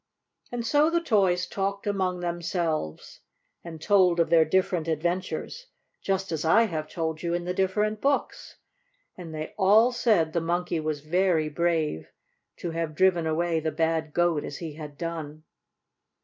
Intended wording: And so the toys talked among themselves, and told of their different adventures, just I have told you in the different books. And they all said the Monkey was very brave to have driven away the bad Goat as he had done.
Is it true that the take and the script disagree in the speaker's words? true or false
true